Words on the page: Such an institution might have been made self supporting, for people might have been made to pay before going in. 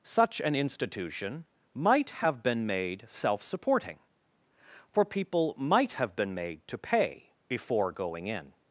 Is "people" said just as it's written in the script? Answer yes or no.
yes